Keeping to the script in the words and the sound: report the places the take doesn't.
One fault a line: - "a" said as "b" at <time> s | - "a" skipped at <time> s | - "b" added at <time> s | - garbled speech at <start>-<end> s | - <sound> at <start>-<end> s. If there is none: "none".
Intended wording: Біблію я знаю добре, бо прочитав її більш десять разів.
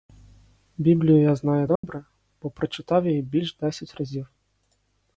- dropout at 1.8-1.8 s